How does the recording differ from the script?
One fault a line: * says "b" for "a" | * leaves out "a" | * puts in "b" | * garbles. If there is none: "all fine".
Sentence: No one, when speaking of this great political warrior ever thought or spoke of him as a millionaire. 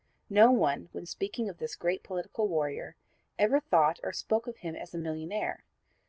all fine